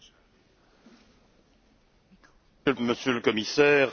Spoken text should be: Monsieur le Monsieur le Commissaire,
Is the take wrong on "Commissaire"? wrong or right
right